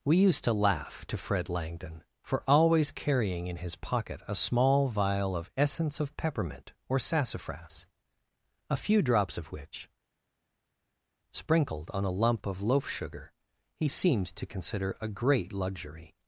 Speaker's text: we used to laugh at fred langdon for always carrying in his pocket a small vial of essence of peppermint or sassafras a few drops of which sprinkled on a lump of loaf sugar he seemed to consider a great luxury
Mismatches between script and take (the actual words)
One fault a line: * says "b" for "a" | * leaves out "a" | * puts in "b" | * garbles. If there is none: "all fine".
* says "to" for "at"